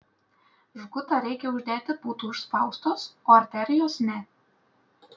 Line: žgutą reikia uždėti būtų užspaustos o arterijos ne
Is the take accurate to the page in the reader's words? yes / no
yes